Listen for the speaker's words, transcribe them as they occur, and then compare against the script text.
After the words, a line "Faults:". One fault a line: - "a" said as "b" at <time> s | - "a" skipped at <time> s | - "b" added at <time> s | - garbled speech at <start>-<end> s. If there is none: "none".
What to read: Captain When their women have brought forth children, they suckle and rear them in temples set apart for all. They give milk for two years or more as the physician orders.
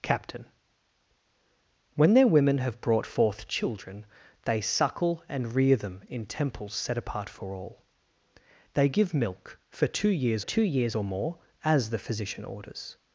Captain When their women have brought forth children, they suckle and rear them in temples set apart for all. They give milk for two years two years or more as the physician orders.
Faults:
- "two years" added at 10.4 s